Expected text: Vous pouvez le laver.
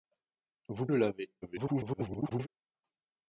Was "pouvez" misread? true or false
true